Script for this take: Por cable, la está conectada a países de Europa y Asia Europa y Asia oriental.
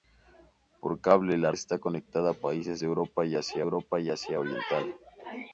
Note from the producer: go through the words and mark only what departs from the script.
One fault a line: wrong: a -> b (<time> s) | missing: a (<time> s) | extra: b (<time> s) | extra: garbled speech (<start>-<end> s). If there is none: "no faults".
no faults